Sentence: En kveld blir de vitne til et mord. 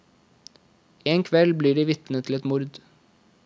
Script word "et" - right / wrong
right